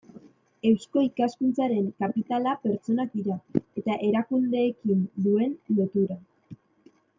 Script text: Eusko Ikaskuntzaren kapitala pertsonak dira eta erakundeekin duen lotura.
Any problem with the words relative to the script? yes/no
no